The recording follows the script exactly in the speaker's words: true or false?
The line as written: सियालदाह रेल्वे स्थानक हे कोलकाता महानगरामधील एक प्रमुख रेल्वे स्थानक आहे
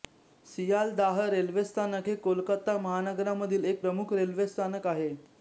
true